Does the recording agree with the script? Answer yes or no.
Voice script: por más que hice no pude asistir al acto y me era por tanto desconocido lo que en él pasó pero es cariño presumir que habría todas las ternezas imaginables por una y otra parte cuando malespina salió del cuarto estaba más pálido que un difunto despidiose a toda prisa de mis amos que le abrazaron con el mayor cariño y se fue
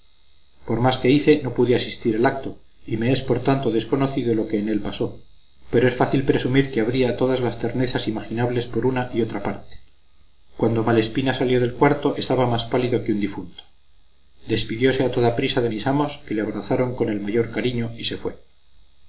no